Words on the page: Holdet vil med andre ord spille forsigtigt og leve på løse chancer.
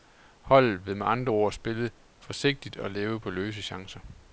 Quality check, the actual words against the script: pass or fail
pass